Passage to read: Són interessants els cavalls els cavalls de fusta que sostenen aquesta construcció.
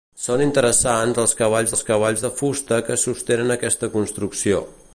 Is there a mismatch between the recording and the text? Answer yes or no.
no